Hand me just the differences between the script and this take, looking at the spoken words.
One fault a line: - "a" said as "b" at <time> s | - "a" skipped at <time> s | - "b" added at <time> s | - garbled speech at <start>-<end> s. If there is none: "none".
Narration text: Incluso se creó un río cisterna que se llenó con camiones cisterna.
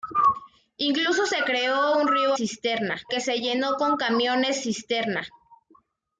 none